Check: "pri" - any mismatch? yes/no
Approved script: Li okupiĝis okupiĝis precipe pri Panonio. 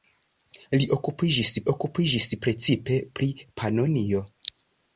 no